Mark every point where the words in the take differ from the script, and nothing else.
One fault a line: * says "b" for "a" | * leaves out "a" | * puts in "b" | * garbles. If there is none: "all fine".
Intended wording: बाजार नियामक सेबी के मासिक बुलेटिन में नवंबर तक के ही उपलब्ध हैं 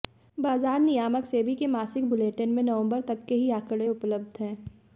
* puts in "आंकड़े"